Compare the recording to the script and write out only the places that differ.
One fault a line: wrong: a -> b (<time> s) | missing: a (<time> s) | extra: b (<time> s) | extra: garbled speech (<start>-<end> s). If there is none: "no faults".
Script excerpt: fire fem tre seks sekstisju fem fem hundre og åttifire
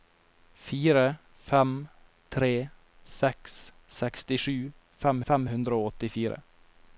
no faults